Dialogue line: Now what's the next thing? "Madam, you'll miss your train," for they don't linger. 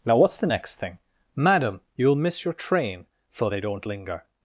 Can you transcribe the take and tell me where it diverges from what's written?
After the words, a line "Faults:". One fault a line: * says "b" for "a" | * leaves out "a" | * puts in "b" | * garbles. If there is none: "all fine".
Now what's the next thing? "Madam, you'll miss your train," for they don't linger.
Faults:
all fine